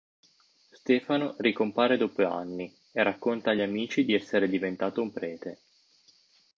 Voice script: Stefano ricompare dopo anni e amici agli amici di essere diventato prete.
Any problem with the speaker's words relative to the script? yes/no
yes